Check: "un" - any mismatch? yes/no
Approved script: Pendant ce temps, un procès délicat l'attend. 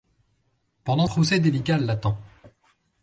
yes